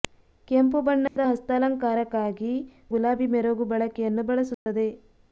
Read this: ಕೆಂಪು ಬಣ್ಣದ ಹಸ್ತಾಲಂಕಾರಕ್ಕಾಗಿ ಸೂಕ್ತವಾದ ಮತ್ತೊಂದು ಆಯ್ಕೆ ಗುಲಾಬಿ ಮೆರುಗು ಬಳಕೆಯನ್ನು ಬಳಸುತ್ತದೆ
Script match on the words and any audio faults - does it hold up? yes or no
no